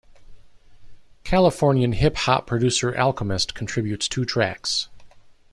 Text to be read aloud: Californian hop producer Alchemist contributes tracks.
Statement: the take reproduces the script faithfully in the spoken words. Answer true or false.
false